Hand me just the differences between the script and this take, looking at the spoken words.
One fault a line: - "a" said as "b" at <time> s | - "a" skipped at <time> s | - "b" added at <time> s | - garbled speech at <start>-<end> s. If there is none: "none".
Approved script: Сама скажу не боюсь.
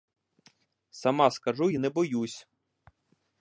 - "й" added at 1.7 s